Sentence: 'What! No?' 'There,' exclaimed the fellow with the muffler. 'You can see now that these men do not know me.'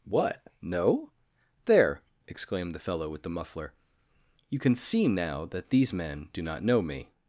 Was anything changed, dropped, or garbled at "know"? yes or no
no